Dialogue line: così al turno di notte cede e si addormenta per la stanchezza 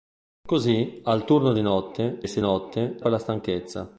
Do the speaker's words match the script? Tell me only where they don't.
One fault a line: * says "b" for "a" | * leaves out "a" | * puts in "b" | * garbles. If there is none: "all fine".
* leaves out "cede"
* says "notte" for "addormenta"